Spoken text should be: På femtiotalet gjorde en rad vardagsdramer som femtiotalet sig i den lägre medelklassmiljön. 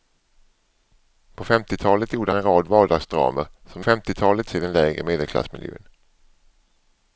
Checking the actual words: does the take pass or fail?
pass